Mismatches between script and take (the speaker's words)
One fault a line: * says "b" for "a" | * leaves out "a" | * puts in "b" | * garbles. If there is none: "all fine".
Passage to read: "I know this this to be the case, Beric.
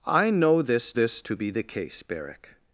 all fine